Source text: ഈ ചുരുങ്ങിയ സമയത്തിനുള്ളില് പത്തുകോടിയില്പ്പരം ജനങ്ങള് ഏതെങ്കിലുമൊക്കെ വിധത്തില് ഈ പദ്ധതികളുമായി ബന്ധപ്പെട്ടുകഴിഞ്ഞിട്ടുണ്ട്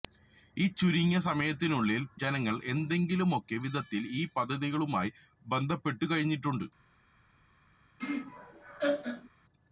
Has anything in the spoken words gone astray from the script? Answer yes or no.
yes